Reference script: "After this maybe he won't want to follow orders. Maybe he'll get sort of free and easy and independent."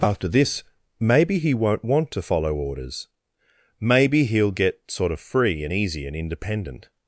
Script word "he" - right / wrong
right